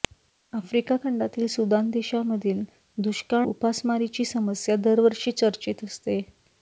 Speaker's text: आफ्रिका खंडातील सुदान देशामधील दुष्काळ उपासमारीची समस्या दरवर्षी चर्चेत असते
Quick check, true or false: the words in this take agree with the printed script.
true